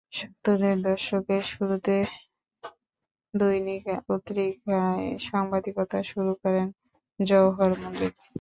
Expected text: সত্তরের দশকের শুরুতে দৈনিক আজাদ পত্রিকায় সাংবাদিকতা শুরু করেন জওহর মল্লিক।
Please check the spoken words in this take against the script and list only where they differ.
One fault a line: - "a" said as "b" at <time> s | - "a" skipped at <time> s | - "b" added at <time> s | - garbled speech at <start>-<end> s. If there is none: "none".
- "আজাদ" skipped at 3.8 s